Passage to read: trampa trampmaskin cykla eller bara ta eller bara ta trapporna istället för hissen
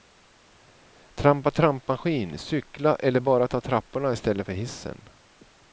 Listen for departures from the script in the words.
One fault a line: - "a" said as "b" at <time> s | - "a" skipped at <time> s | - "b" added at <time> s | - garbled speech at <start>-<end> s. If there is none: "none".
- "eller bara ta" skipped at 3.6 s